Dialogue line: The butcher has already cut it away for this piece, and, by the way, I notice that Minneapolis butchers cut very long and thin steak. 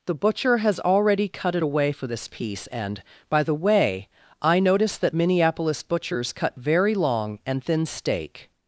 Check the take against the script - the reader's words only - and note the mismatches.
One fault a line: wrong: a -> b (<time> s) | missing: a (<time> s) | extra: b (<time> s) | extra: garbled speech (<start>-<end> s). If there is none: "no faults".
no faults